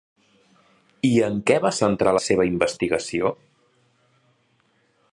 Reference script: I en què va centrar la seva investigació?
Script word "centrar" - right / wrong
right